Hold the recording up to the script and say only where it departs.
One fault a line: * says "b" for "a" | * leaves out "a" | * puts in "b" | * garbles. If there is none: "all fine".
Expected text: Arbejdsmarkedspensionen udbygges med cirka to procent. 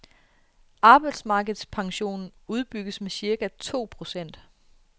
all fine